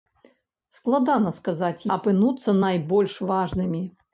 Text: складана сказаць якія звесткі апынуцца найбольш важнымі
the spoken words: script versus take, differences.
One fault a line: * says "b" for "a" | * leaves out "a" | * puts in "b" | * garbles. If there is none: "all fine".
* leaves out "якія звесткі"